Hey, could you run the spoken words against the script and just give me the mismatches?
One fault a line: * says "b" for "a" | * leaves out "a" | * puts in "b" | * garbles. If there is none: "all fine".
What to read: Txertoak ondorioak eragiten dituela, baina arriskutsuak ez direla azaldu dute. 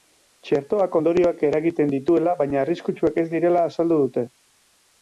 all fine